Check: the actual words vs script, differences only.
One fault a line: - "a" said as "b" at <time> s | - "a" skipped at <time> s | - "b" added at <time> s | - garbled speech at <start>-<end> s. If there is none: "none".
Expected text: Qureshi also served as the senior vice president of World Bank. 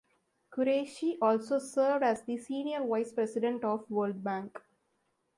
none